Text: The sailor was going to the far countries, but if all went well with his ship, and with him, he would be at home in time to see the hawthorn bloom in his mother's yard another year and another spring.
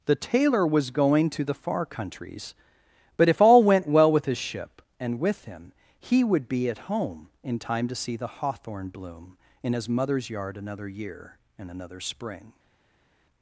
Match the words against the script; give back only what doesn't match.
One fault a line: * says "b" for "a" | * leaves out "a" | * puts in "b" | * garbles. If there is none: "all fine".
* says "tailor" for "sailor"